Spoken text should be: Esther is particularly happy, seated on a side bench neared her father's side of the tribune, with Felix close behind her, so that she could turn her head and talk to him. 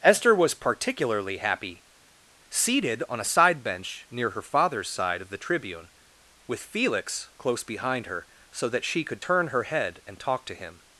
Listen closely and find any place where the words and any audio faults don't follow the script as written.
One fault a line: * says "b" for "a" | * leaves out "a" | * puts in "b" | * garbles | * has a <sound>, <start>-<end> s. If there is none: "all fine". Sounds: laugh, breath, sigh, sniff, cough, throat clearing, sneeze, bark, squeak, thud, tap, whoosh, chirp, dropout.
* says "was" for "is"
* says "near" for "neared"